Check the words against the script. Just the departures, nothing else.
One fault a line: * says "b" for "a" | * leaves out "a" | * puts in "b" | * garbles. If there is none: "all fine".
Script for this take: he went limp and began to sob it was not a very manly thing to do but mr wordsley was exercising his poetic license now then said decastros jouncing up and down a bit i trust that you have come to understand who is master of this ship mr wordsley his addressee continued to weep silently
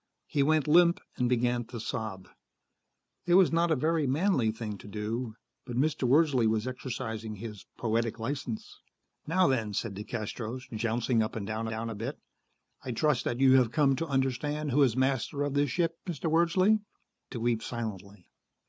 * puts in "down"
* leaves out "his addressee continued"